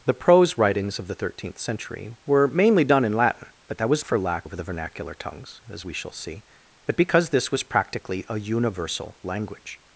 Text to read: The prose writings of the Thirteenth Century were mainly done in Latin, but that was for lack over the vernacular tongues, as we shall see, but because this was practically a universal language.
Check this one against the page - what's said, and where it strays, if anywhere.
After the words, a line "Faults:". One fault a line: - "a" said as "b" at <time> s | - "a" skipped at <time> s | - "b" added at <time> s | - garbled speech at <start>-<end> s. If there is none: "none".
The prose writings of the Thirteenth Century were mainly done in Latin, but that was for lack over the vernacular tongues, as we shall see, but because this was practically a universal language.
Faults:
none